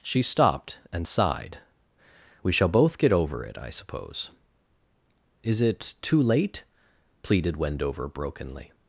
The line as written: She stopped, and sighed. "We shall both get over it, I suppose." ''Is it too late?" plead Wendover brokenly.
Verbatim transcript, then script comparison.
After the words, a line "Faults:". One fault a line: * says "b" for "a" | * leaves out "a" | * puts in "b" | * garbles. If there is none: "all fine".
She stopped, and sighed. "We shall both get over it, I suppose." ''Is it too late?" pleaded Wendover brokenly.
Faults:
* says "pleaded" for "plead"